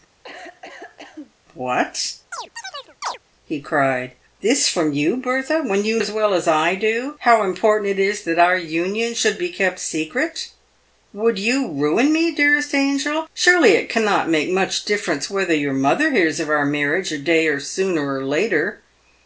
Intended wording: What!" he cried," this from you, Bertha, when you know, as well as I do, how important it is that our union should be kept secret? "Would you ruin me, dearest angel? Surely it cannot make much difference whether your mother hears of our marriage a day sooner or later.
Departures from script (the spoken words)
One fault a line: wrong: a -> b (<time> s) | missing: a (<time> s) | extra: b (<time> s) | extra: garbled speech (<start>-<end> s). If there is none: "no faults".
missing: know (6.0 s)